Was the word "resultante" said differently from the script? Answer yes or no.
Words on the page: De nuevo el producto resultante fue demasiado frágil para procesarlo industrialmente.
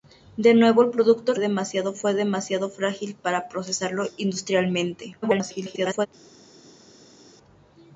yes